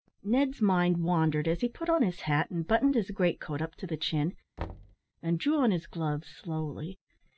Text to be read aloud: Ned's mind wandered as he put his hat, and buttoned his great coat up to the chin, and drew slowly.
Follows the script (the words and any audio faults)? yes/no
no